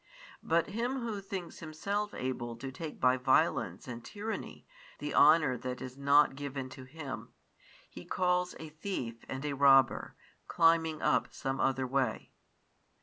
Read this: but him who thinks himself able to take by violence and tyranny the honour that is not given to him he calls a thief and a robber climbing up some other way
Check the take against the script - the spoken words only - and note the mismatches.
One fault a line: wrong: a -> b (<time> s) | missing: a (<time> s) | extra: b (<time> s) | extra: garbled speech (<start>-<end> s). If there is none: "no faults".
no faults